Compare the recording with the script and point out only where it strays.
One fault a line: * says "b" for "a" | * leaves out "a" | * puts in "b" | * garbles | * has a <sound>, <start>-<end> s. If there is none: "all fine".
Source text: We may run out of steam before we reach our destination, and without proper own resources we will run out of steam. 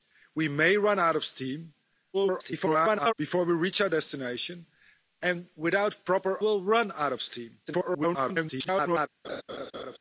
* garbles
* leaves out "own resources we"
* garbles
* has a laugh, 9.2-10.0 s